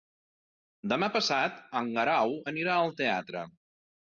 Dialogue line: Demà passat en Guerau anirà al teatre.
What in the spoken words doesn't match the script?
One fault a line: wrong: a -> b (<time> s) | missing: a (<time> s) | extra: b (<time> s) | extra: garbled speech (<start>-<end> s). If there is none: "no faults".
no faults